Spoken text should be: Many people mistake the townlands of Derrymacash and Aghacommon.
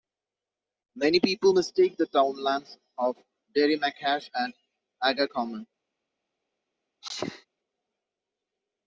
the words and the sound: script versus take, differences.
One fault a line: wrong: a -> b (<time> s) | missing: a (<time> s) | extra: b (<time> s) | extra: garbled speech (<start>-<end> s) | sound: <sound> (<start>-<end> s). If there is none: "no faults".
sound: sneeze (7.0-7.5 s)